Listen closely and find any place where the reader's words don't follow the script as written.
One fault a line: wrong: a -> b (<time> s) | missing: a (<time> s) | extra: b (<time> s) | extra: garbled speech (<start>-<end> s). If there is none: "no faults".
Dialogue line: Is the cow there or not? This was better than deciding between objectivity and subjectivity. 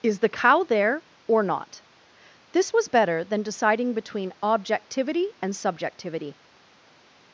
no faults